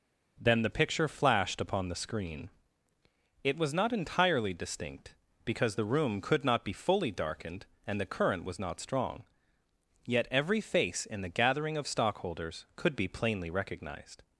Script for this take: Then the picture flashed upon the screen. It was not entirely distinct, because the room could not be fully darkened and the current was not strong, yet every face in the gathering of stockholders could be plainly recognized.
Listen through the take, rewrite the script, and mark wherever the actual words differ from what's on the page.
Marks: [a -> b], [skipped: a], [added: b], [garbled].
Then the picture flashed upon the screen. It was not entirely distinct, because the room could not be fully darkened and the current was not strong, yet every face in the gathering of stockholders could be plainly recognized.